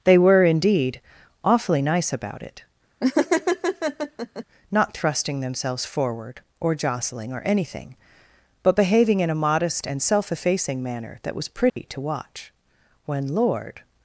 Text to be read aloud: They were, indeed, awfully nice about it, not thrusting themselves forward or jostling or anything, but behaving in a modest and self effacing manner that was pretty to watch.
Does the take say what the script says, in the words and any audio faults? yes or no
no